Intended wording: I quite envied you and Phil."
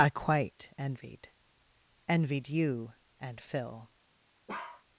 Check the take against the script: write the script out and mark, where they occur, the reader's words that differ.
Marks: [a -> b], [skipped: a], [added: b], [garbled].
I quite envied [added: envied] you and Phil."